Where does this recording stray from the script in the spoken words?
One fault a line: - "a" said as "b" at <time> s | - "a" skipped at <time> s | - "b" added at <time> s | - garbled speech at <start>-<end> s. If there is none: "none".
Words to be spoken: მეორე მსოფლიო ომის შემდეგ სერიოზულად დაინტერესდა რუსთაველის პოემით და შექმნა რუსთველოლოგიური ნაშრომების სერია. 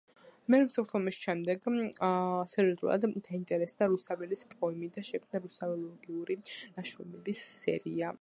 none